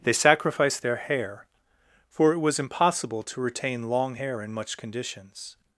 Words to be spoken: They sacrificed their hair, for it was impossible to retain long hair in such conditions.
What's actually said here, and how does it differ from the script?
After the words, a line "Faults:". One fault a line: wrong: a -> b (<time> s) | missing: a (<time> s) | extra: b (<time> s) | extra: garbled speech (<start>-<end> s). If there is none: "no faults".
They sacrificed their hair, for it was impossible to retain long hair in much conditions.
Faults:
wrong: such -> much (4.5 s)